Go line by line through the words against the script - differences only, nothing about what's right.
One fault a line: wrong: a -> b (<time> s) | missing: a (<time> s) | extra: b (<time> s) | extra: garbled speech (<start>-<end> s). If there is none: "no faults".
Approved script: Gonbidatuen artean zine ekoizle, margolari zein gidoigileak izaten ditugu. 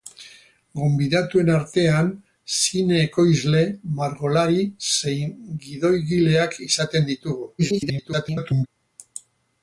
extra: garbled speech (7.6-8.7 s)